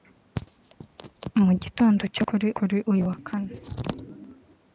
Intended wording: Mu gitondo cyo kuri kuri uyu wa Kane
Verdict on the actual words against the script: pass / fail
pass